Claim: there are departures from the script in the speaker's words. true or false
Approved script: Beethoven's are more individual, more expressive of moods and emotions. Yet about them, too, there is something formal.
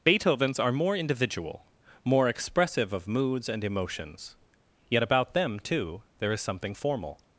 false